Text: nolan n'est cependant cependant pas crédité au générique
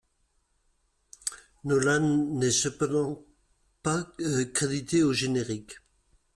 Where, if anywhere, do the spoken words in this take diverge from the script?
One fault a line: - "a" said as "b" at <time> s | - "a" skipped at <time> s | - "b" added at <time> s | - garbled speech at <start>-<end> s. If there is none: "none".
- "cependant" skipped at 3.2 s